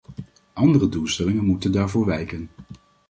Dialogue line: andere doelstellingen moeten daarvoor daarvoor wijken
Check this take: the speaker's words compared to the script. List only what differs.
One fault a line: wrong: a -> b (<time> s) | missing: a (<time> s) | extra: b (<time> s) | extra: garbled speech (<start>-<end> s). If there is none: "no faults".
missing: daarvoor (2.0 s)